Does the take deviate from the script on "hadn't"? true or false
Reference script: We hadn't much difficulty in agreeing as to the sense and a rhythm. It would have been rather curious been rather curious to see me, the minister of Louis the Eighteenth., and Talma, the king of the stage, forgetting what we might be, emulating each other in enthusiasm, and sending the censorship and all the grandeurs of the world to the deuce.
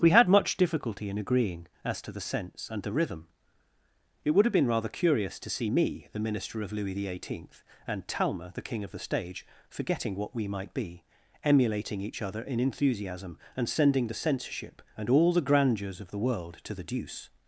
true